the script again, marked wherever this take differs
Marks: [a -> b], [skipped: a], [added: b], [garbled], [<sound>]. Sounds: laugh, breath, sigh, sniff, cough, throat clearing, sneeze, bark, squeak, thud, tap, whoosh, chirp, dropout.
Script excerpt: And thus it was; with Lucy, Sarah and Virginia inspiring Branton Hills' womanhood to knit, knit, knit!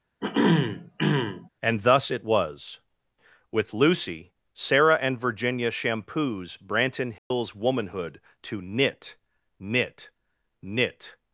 [throat clearing] And thus it was; with Lucy, Sarah and Virginia [inspiring -> shampoos] Branton Hills' [dropout] womanhood to knit, knit, knit!